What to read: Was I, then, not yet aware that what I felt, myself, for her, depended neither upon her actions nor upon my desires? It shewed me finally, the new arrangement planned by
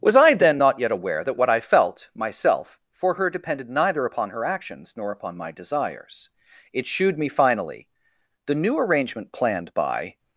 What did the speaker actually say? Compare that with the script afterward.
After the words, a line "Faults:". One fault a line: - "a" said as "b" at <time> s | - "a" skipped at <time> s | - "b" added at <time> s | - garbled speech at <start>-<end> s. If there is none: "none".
Was I, then, not yet aware that what I felt, myself, for her, depended neither upon her actions nor upon my desires? It shewed me finally, the new arrangement planned by
Faults:
none